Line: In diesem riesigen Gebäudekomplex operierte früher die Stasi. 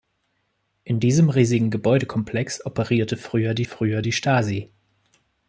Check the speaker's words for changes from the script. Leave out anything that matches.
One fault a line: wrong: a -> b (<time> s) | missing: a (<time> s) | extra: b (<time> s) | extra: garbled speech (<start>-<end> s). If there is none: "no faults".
extra: früher die (3.6 s)